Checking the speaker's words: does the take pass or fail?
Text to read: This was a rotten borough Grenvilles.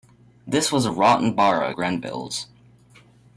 pass